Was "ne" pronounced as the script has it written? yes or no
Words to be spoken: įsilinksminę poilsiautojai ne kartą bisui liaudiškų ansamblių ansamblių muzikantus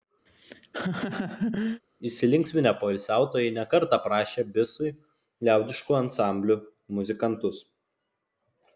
yes